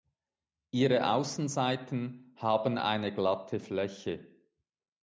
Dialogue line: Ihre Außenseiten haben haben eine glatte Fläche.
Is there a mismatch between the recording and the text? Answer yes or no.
yes